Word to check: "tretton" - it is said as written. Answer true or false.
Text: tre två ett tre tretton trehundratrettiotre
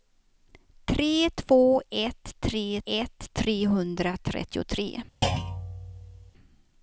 false